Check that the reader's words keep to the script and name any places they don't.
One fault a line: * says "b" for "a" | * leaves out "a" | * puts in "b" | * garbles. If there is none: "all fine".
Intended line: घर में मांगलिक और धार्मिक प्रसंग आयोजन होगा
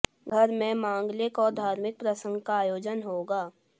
* puts in "का"